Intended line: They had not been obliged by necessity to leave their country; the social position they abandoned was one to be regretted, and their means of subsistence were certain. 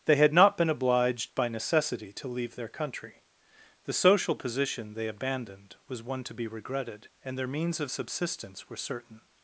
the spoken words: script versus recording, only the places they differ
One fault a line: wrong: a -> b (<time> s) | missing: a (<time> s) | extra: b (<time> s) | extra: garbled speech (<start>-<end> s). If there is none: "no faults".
no faults